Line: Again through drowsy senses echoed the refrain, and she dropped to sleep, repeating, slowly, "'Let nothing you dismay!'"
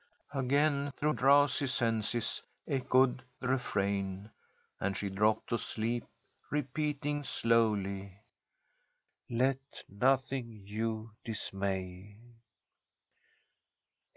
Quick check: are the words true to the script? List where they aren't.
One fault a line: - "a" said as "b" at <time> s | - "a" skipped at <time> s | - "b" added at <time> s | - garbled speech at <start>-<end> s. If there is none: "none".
none